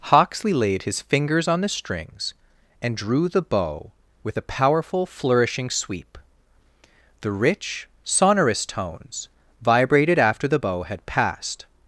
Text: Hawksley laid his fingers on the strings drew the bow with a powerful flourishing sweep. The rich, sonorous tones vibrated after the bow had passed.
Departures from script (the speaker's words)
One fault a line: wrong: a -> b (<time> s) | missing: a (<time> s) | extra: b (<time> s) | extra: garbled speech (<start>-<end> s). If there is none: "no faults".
extra: and (2.8 s)